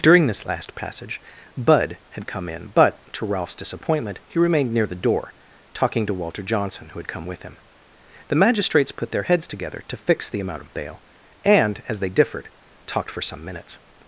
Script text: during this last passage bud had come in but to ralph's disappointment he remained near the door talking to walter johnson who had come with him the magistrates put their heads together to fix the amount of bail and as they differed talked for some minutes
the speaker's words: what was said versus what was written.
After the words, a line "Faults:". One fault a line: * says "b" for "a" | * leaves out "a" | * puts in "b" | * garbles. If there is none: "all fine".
during this last passage bud had come in but to ralph's disappointment he remained near the door talking to walter johnson who had come with him the magistrates put their heads together to fix the amount of bail and as they differed talked for some minutes
Faults:
all fine